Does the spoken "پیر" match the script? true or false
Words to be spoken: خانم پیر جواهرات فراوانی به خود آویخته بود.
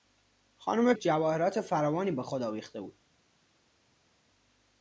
false